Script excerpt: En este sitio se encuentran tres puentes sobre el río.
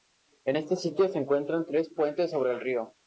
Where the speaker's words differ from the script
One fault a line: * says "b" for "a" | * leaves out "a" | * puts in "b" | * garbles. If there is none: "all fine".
all fine